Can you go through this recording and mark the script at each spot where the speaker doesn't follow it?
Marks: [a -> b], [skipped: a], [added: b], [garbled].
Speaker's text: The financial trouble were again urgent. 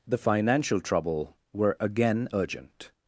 The financial trouble were again urgent.